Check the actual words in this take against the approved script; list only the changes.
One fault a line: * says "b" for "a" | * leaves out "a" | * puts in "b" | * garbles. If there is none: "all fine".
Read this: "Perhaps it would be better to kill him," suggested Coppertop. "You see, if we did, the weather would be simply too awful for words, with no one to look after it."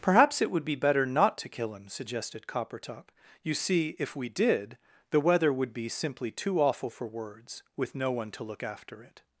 * puts in "not"